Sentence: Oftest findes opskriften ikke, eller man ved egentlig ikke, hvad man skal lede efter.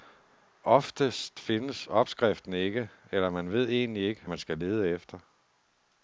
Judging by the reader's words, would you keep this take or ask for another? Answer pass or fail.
fail